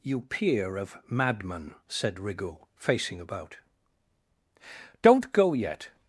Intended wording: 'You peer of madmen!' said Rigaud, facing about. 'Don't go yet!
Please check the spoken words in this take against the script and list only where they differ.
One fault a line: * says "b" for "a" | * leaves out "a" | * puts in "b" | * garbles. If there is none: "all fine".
all fine